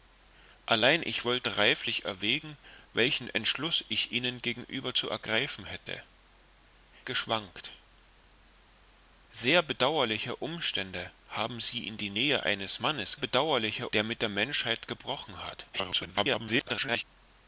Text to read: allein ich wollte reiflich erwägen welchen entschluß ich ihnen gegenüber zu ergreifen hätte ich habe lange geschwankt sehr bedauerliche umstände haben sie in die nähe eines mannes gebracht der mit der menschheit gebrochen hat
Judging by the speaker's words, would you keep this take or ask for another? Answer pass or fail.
fail